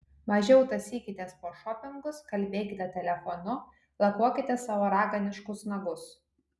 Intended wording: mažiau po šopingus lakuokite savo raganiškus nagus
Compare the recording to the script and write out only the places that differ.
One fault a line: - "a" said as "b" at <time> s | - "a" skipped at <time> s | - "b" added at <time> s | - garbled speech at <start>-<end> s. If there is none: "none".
- "tąsykitės" added at 0.7 s
- "kalbėkite telefonu" added at 2.3 s